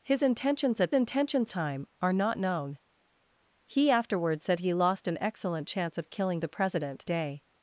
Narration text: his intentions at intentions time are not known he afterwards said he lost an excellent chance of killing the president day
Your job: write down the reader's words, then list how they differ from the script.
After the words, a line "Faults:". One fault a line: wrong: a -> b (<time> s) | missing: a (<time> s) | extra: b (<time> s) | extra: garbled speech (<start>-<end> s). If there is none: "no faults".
his intentions at intentions time are not known he afterwards said he lost an excellent chance of killing the president day
Faults:
no faults